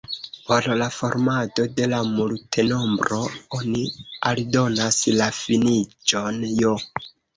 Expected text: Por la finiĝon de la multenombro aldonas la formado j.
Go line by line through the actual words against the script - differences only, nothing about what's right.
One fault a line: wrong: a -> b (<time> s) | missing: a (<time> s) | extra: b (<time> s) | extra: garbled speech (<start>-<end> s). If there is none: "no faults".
wrong: finiĝon -> formado (0.9 s)
extra: oni (3.6 s)
wrong: formado -> finiĝon (5.4 s)